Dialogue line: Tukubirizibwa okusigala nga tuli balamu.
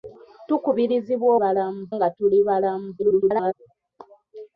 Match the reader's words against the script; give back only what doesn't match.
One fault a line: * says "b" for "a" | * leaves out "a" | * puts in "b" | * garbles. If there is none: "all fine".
* says "balamu" for "okusigala"
* garbles